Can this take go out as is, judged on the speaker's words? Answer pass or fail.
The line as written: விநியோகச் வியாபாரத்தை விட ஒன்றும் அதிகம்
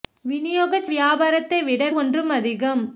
pass